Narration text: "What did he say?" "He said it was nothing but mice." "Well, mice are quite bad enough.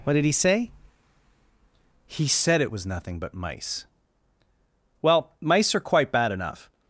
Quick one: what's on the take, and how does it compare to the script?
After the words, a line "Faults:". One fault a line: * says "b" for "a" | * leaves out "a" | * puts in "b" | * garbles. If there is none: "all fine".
"What did he say?" "He said it was nothing but mice." "Well, mice are quite bad enough.
Faults:
all fine